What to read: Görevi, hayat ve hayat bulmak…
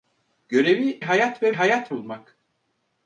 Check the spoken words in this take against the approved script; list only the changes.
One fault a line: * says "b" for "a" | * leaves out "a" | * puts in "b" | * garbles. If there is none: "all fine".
all fine